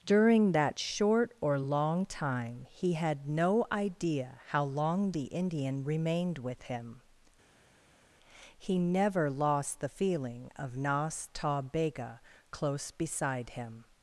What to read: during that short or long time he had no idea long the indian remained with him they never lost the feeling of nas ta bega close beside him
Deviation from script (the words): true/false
true